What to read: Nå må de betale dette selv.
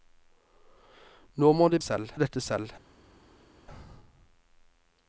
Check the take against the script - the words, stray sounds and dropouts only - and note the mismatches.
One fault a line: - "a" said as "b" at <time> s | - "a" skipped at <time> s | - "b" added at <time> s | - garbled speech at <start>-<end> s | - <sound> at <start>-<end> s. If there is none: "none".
- "betale" said as "selv" at 1.8 s